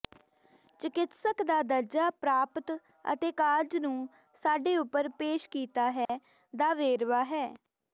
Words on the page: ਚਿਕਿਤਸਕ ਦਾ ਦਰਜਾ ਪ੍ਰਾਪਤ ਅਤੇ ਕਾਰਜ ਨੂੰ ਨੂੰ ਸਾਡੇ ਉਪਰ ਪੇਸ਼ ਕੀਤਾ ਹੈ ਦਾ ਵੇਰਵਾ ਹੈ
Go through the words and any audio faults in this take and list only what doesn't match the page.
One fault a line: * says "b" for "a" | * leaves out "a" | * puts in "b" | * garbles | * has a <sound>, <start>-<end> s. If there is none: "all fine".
* leaves out "ਨੂੰ"
* has a dropout, 6.1-6.1 s